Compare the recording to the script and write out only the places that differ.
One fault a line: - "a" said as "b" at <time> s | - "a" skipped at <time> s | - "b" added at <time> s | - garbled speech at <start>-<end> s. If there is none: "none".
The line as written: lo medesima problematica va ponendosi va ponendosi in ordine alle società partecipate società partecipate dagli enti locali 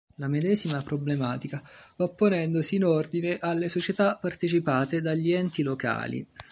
- "lo" said as "la" at 0.1 s
- "va ponendosi" skipped at 2.8 s
- "società partecipate" skipped at 5.0 s